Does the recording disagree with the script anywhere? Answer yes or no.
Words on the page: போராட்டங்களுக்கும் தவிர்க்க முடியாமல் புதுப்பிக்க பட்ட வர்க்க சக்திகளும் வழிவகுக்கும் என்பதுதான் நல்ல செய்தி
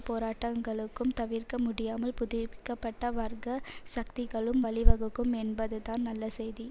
no